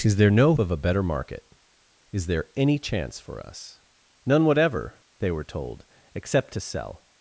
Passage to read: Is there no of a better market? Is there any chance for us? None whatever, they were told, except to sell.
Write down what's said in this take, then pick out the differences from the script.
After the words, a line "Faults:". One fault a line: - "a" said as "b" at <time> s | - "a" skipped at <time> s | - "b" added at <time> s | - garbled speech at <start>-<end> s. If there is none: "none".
Is there no of a better market? Is there any chance for us? None whatever, they were told, except to sell.
Faults:
none